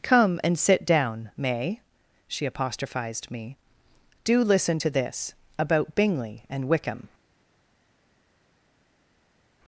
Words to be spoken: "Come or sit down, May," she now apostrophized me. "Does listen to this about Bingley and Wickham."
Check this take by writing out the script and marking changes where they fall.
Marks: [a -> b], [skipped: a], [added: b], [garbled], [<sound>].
"Come [or -> and] sit down, May," she [skipped: now] apostrophized me. ["Does -> Do] listen to this about Bingley and Wickham."